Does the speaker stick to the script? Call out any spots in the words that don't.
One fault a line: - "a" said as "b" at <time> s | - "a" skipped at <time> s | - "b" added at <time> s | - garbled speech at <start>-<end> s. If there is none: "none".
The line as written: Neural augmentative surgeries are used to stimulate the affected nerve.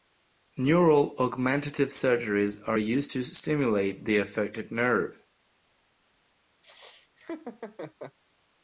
none